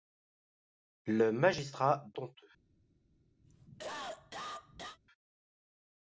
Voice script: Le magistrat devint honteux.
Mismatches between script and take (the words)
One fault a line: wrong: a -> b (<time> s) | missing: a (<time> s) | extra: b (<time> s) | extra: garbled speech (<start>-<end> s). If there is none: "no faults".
missing: devint (2.1 s)